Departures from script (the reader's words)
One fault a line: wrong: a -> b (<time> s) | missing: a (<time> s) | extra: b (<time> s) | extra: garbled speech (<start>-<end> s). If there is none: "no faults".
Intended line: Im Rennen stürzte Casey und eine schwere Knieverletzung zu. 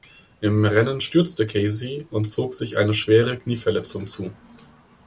extra: zog sich (2.2 s)